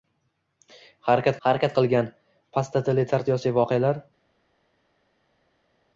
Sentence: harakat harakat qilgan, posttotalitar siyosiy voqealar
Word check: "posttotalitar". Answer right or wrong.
right